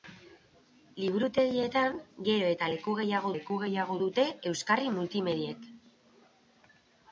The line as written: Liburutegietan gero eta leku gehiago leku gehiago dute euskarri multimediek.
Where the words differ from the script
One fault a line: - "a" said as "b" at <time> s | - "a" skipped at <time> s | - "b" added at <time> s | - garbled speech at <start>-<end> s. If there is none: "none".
none